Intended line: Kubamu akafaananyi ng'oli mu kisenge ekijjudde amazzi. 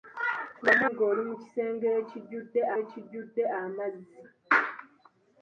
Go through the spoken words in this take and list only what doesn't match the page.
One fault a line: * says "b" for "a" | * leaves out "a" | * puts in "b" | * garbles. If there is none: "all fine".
* leaves out "akafaananyi"
* puts in "ekijjudde"